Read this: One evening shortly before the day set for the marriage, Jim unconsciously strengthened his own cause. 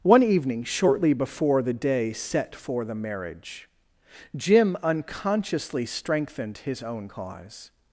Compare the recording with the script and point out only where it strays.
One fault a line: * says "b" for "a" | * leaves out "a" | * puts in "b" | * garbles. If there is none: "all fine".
all fine